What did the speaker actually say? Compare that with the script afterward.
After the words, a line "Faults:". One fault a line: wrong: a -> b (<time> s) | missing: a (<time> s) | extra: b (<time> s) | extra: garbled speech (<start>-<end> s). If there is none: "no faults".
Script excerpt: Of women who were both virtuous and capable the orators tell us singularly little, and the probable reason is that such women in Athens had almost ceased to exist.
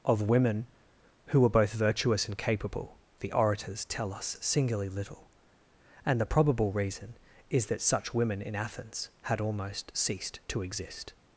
Of women who were both virtuous and capable the orators tell us singularly little, and the probable reason is that such women in Athens had almost ceased to exist.
Faults:
no faults